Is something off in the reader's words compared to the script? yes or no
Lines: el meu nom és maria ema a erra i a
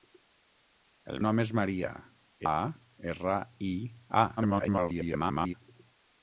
yes